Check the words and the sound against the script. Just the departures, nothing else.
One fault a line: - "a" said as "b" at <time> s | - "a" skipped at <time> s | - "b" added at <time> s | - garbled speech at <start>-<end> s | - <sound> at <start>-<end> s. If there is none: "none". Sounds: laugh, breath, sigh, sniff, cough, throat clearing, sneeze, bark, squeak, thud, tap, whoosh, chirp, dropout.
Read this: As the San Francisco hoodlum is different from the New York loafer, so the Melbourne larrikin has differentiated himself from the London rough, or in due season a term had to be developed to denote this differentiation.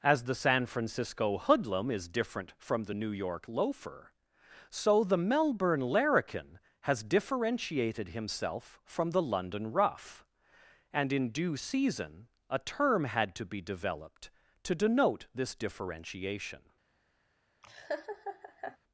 - "or" said as "and" at 10.9 s
- laugh at 17.6-18.8 s